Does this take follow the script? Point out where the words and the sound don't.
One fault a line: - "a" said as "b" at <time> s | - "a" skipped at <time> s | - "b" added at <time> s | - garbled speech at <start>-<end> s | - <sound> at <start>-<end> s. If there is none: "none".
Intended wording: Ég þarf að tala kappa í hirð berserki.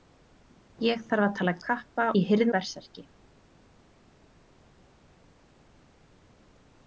none